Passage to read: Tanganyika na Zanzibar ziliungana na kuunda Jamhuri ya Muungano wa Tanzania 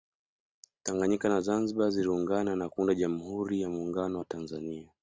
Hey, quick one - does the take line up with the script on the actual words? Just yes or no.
yes